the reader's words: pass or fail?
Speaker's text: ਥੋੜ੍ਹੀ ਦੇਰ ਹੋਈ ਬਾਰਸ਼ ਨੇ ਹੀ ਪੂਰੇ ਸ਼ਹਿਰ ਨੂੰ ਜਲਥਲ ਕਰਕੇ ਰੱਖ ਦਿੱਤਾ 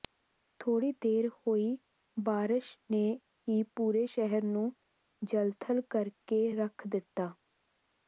pass